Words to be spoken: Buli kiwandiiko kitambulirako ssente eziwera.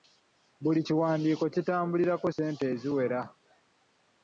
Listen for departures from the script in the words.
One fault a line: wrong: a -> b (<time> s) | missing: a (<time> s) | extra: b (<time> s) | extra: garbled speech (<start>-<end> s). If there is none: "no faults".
no faults